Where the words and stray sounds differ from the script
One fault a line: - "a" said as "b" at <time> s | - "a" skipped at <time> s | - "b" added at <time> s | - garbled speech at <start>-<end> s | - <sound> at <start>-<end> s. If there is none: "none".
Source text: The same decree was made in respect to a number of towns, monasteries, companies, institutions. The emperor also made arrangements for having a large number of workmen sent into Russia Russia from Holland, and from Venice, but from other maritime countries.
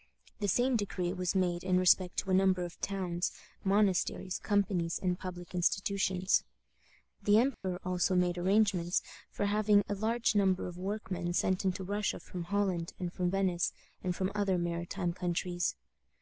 - "and public" added at 5.0 s
- dropout at 7.5-7.6 s
- "Russia" skipped at 12.2 s
- "but" said as "and" at 14.0 s